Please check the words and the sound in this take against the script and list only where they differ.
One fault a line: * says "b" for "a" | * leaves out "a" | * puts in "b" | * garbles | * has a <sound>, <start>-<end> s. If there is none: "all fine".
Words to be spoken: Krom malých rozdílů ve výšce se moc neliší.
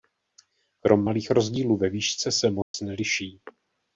* has a dropout, 2.6-2.7 s